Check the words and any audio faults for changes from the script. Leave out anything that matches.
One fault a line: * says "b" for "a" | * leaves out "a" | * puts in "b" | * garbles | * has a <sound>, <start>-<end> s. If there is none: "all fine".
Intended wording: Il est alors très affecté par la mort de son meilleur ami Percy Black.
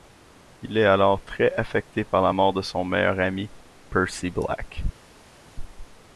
all fine